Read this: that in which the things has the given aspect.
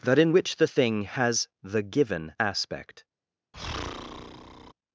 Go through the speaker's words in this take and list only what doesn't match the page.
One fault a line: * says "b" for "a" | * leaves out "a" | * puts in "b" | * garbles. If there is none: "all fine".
* says "thing" for "things"